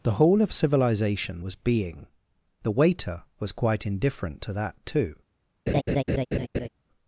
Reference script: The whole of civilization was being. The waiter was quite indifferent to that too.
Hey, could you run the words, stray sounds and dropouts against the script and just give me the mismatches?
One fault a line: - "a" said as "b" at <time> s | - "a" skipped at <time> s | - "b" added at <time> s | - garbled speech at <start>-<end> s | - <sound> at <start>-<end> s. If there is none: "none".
- laugh at 5.7-6.7 s